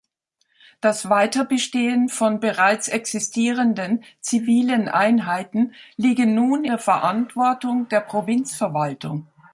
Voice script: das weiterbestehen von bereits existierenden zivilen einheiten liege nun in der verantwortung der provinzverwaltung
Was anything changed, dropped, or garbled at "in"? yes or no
yes